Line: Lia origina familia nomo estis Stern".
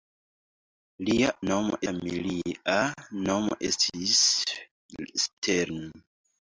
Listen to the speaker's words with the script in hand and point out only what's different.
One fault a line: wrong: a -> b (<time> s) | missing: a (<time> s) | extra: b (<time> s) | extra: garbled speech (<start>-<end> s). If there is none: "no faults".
wrong: origina -> nomo (1.5 s)